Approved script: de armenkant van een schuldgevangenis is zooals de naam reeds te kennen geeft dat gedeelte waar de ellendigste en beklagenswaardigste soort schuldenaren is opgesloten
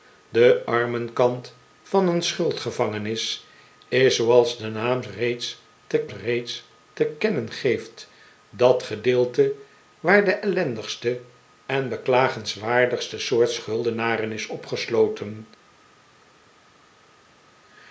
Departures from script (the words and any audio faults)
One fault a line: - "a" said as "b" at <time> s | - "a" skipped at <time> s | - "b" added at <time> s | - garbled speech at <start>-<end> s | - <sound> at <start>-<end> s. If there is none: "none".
- "reeds te" added at 6.1 s